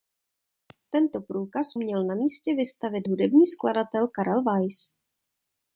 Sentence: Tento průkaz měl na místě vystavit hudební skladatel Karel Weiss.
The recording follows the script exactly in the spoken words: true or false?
true